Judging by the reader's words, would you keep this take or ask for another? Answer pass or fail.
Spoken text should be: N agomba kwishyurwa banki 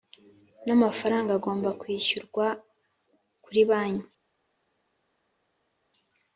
fail